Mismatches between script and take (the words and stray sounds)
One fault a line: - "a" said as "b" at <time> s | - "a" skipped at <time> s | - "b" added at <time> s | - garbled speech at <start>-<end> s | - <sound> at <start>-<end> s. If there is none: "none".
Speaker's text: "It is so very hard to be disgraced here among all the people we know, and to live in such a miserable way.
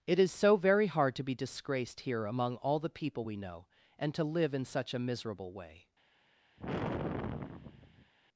- sigh at 6.6-8.1 s